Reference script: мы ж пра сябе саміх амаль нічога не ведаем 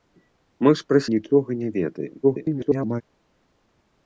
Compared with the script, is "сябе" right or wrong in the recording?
wrong